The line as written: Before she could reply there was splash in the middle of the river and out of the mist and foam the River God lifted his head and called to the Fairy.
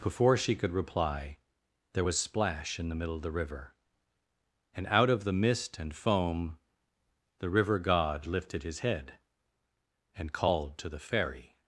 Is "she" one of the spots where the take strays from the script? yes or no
no